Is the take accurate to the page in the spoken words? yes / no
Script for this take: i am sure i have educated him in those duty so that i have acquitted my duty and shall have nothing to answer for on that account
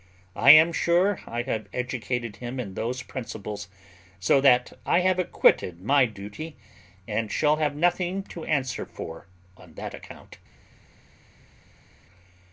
no